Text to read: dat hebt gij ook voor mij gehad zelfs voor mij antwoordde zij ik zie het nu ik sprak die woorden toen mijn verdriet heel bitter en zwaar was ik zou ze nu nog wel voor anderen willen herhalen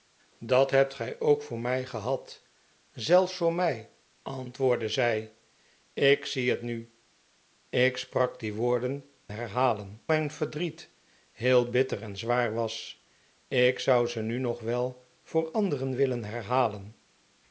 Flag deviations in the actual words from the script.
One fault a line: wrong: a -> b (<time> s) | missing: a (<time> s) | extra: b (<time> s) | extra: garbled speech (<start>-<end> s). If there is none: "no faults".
wrong: toen -> herhalen (9.3 s)